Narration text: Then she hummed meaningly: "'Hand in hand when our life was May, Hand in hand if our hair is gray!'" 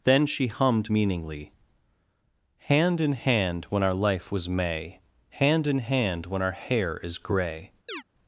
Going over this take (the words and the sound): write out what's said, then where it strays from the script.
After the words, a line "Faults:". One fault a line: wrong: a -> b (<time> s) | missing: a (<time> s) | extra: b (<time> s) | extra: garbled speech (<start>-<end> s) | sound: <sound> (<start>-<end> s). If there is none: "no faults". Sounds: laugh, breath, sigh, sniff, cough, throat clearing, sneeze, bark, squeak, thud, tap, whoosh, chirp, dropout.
Then she hummed meaningly: "'Hand in hand when our life was May, Hand in hand when our hair is gray!'"
Faults:
wrong: if -> when (6.3 s)
sound: chirp (7.9-8.0 s)